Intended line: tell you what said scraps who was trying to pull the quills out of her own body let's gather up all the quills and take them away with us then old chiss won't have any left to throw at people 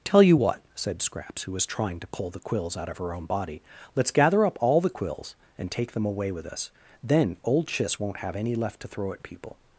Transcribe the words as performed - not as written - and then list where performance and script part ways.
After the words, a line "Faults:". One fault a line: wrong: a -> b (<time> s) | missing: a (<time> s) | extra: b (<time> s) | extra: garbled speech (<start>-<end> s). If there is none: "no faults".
tell you what said scraps who was trying to pull the quills out of her own body let's gather up all the quills and take them away with us then old chiss won't have any left to throw at people
Faults:
no faults